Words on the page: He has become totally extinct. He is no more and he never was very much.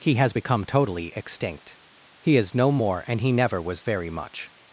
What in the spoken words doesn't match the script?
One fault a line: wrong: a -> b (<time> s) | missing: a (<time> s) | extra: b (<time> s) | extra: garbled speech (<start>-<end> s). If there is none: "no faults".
no faults